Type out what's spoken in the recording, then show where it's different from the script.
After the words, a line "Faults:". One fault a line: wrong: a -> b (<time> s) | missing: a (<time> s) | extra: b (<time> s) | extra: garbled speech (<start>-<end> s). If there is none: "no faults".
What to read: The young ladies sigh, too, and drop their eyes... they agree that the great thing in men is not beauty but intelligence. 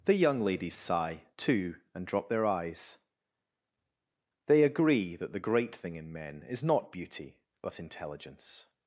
The young ladies sigh, too, and drop their eyes... they agree that the great thing in men is not beauty but intelligence.
Faults:
no faults